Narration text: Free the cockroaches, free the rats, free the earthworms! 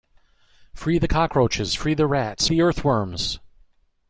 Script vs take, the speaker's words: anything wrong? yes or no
yes